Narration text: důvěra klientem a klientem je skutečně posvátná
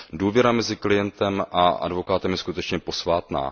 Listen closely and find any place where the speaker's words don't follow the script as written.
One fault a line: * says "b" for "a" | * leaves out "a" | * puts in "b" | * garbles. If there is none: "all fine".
* puts in "mezi"
* says "advokátem" for "klientem"